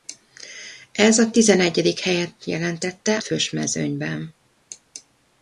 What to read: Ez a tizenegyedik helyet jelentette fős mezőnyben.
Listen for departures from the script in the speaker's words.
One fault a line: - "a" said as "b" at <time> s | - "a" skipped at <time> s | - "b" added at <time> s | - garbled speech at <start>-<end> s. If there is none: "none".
none